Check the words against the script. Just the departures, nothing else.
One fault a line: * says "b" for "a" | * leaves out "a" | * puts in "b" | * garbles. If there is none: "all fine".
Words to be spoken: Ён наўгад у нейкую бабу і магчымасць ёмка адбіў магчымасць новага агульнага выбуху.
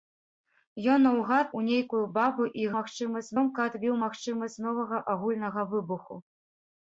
all fine